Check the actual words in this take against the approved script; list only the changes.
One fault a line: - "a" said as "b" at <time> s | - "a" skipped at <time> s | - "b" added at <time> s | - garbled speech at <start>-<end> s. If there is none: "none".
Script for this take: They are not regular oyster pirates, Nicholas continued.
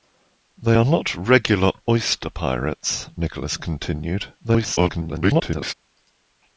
- garbled speech at 4.4-5.7 s